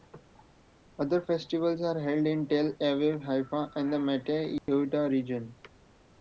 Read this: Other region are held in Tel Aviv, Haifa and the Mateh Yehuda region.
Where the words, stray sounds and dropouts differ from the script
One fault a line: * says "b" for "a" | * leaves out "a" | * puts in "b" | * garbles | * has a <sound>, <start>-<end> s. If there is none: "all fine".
* says "festivals" for "region"
* has a dropout, 4.6-4.7 s